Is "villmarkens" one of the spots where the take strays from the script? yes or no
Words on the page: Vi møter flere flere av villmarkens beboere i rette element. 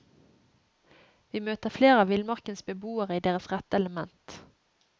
no